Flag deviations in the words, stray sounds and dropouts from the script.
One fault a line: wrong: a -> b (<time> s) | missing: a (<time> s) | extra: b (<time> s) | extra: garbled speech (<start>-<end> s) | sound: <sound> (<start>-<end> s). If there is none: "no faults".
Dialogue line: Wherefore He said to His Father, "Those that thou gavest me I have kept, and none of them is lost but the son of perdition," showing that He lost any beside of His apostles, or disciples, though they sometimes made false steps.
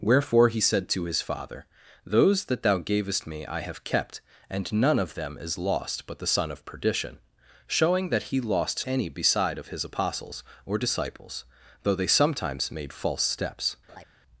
sound: laugh (13.9-14.1 s)